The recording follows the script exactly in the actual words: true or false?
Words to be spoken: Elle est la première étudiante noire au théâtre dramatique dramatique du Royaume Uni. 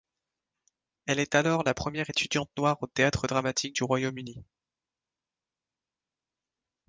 false